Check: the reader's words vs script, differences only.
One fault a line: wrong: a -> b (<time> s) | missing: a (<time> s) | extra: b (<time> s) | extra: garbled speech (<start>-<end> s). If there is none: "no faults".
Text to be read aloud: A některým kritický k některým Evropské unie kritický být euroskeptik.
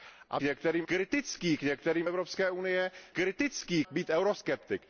no faults